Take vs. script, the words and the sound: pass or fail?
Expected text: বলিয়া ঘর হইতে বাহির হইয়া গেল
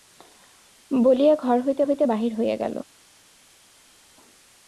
fail